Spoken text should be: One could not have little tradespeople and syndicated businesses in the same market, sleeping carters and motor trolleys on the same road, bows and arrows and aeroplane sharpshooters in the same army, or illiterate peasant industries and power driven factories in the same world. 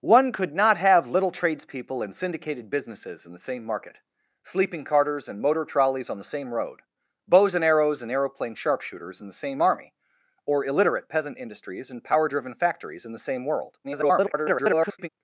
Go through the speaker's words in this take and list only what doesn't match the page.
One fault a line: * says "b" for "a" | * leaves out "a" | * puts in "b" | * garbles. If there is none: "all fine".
* garbles